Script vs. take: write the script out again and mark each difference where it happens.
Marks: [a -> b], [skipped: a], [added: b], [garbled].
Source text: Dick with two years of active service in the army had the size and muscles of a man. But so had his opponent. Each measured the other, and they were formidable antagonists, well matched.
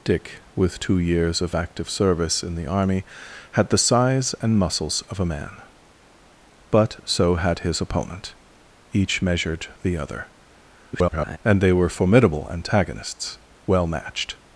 Dick with two years of active service in the army had the size and muscles of a man. But so had his opponent. Each measured the other, [garbled] and they were formidable antagonists, well matched.